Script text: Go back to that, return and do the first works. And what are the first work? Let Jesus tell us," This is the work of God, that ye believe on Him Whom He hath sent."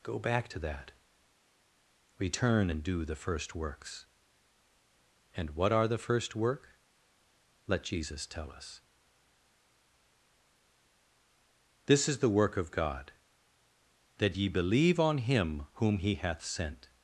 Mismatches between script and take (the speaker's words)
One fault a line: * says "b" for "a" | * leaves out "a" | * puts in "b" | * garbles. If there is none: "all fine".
all fine